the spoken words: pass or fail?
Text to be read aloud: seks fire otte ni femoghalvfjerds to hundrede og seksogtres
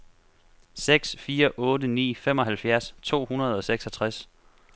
pass